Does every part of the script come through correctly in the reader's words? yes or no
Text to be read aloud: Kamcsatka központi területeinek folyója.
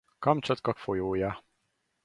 no